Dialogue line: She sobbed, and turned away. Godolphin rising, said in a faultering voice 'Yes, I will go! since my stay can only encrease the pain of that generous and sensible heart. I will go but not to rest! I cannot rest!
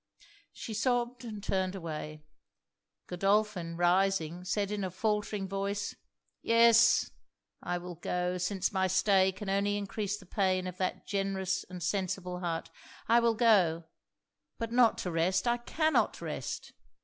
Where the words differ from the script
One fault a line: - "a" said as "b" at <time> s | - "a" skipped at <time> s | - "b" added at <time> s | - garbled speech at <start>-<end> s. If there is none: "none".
none